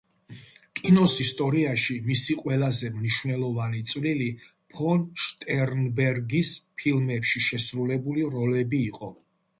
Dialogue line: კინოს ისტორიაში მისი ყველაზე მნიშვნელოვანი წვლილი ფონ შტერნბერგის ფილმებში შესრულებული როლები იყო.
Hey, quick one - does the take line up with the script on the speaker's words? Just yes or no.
yes